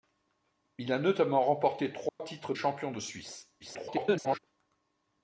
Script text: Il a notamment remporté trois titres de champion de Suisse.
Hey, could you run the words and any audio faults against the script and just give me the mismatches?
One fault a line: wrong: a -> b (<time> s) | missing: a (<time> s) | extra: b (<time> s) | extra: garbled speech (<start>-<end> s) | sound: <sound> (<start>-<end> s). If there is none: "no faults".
sound: dropout (2.1-2.2 s)
missing: de (2.5 s)
extra: garbled speech (3.6-4.4 s)